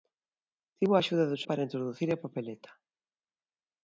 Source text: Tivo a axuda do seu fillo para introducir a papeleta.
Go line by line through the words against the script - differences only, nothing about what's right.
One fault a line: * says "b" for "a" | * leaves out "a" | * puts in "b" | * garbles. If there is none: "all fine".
* leaves out "seu fillo"